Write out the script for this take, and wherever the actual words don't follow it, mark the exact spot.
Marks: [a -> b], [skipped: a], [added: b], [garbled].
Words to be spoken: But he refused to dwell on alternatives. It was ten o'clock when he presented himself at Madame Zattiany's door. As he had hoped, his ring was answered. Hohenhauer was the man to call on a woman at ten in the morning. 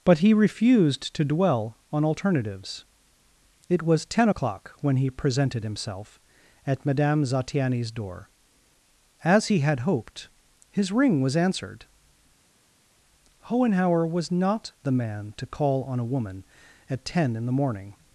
But he refused to dwell on alternatives. It was ten o'clock when he presented himself at Madame Zattiany's door. As he had hoped, his ring was answered. Hohenhauer was [added: not] the man to call on a woman at ten in the morning.